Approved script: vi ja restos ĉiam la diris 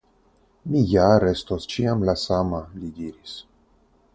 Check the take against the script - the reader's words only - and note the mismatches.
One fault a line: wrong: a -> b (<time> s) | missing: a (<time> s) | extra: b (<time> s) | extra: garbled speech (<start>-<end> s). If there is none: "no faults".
wrong: vi -> mi (0.7 s)
extra: sama li (2.3 s)